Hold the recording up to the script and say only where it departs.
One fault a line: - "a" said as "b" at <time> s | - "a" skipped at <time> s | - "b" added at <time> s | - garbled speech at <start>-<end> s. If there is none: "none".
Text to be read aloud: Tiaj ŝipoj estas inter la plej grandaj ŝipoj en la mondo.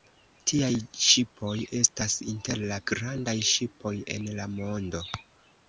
- "plej" skipped at 2.8 s